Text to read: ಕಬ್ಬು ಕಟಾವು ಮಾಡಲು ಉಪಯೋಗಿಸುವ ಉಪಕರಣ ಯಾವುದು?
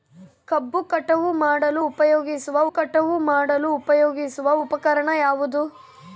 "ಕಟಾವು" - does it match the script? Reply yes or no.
yes